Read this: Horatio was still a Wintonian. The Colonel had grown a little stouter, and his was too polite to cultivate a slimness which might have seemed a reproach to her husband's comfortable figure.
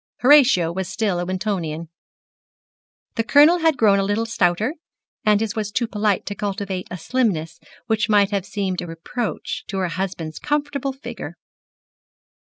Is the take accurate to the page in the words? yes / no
yes